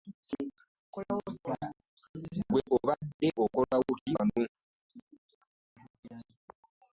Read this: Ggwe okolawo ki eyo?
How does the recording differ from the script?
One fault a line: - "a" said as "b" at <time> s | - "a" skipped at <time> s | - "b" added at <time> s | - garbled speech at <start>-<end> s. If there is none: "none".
- "obadde" added at 2.8 s
- "eyo" said as "wano" at 4.1 s